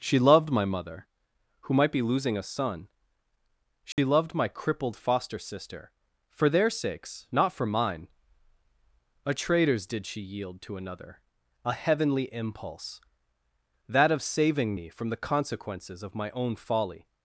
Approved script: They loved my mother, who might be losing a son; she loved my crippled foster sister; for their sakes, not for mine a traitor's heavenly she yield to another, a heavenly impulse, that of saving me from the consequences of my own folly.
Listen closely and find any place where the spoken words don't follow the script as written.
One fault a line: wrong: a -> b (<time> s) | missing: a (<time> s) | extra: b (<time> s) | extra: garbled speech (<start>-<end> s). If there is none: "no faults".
wrong: They -> She (0.0 s)
wrong: heavenly -> did (9.8 s)